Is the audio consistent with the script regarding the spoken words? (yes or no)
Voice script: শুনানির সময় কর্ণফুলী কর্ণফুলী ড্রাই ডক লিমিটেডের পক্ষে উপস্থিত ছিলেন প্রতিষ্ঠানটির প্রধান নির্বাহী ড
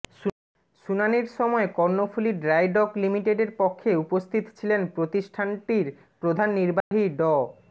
no